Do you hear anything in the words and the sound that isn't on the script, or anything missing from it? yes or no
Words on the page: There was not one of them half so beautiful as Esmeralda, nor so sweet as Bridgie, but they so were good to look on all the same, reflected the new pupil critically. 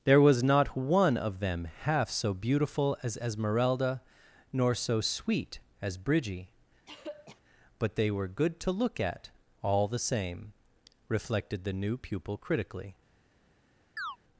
yes